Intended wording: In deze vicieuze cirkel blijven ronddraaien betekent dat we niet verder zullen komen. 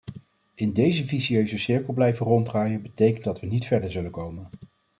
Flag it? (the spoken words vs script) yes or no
no